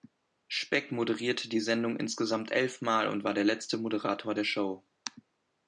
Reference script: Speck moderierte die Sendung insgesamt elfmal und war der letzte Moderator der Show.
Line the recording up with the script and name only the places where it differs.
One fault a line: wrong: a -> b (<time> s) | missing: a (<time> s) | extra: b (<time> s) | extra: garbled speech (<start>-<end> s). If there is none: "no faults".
no faults